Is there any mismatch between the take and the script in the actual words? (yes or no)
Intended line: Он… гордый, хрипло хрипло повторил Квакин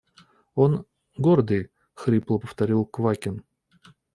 yes